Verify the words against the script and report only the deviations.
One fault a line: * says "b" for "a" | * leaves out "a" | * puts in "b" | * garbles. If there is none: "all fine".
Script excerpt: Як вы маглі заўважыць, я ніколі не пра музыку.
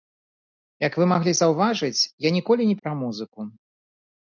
all fine